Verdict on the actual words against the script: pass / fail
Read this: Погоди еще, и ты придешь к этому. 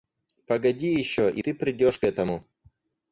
pass